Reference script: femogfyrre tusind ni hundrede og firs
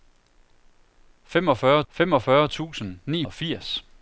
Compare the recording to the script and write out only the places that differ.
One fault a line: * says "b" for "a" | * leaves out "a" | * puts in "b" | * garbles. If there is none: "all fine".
* puts in "femogfyrre"
* leaves out "hundrede"